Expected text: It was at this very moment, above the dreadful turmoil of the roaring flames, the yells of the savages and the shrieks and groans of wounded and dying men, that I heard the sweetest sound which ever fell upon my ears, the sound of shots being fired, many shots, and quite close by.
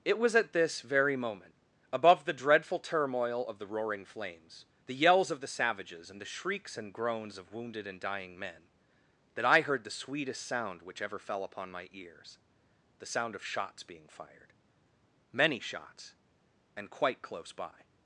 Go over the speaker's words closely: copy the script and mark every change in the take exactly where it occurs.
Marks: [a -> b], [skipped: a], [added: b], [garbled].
It was at this very moment, above the dreadful turmoil of the roaring flames, the yells of the savages and the shrieks and groans of wounded and dying men, that I heard the sweetest sound which ever fell upon my ears, the sound of shots being fired, many shots, and quite close by.